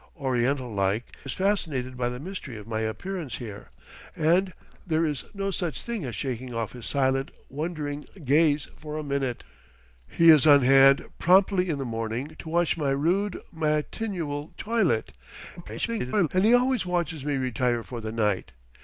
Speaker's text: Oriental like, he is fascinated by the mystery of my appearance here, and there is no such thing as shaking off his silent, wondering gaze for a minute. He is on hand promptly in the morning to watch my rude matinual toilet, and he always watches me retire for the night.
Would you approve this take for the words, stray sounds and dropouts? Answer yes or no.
no